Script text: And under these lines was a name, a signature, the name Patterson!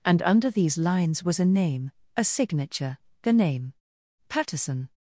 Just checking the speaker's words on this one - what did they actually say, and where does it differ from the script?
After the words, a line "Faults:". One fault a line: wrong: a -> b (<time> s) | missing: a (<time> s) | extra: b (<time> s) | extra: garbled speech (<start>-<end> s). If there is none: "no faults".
And under these lines was a name, a signature, the name Patterson!
Faults:
no faults